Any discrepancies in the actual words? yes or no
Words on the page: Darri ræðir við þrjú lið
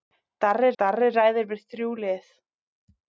yes